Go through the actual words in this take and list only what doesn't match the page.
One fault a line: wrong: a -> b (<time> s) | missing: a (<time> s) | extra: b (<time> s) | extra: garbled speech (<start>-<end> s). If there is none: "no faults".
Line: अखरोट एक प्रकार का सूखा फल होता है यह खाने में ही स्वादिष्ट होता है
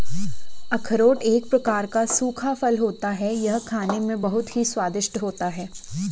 extra: बहुत (4.2 s)